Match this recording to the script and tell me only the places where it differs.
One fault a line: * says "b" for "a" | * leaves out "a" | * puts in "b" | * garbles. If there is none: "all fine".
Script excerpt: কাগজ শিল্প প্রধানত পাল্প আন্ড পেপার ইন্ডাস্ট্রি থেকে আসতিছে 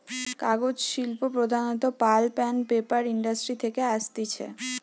all fine